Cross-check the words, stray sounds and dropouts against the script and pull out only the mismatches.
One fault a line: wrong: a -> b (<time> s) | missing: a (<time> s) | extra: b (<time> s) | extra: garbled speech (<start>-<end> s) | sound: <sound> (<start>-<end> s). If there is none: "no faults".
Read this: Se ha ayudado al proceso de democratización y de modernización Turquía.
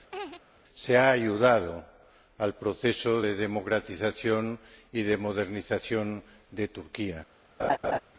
sound: laugh (0.1-0.4 s)
extra: de (6.5 s)
sound: laugh (7.6-8.0 s)